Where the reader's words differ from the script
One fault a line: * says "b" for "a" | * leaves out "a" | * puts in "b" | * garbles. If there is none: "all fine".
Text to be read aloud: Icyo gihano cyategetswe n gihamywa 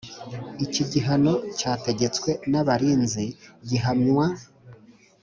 * says "Iki" for "Icyo"
* puts in "abarinzi"